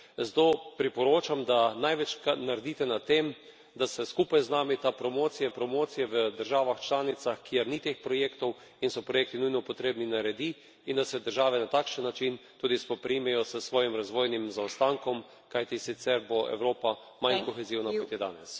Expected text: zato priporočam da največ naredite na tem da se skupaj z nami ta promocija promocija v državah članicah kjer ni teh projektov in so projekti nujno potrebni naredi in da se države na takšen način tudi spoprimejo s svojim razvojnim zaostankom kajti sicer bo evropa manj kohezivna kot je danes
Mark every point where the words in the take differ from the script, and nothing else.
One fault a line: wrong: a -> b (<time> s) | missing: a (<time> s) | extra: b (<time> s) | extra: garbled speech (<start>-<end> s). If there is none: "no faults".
no faults